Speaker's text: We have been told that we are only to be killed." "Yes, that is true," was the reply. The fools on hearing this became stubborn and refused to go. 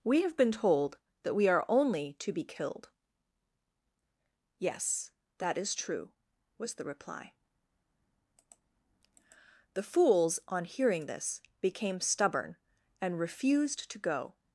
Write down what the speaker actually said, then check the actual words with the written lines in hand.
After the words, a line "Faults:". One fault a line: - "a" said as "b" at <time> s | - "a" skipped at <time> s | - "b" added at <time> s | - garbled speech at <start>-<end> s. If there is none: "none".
We have been told that we are only to be killed." "Yes, that is true," was the reply. The fools on hearing this became stubborn and refused to go.
Faults:
none